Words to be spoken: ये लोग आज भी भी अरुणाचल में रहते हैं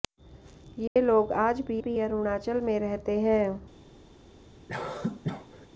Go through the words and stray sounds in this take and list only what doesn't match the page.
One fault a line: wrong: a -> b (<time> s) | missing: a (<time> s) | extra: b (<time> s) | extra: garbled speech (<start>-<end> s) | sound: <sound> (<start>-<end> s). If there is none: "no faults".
sound: dropout (0.9-1.0 s)
sound: cough (4.7-5.7 s)